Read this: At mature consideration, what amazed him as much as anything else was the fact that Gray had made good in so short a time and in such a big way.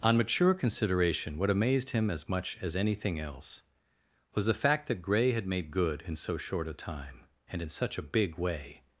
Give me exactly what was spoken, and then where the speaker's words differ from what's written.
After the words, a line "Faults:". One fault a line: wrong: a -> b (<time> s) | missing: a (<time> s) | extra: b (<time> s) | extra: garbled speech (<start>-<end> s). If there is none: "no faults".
On mature consideration, what amazed him as much as anything else was the fact that Gray had made good in so short a time and in such a big way.
Faults:
wrong: At -> On (0.0 s)